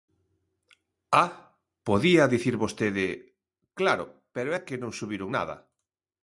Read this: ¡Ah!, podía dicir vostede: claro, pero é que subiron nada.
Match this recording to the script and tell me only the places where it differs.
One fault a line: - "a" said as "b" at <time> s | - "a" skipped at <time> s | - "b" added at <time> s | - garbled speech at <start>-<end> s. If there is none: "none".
- "non" added at 4.8 s